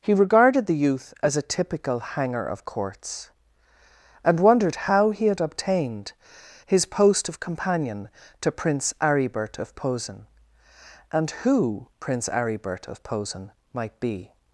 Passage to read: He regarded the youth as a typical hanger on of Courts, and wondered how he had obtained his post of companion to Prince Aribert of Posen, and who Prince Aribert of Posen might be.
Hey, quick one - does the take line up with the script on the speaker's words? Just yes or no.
no